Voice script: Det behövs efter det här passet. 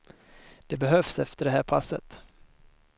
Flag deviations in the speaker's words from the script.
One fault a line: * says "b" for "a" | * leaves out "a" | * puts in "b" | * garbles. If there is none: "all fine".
all fine